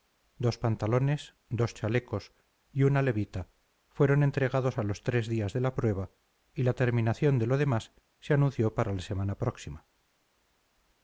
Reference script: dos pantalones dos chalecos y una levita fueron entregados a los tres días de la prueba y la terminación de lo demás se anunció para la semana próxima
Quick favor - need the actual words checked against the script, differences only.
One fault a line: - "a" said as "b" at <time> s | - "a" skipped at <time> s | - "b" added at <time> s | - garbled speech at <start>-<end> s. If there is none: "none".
none